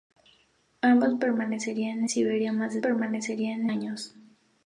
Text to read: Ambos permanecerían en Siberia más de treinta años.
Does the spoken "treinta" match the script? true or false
false